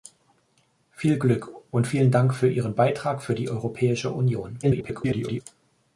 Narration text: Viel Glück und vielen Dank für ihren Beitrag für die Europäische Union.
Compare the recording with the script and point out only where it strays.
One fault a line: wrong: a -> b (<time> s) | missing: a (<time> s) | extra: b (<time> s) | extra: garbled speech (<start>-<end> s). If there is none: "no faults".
extra: garbled speech (4.6-5.4 s)